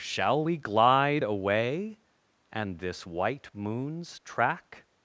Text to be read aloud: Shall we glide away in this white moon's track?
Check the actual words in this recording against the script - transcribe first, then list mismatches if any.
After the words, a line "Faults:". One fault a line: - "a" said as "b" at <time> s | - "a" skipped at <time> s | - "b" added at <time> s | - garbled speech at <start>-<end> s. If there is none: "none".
Shall we glide away and this white moon's track?
Faults:
- "in" said as "and" at 2.5 s